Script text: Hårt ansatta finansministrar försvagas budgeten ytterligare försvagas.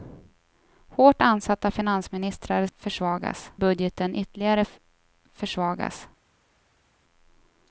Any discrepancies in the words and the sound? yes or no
no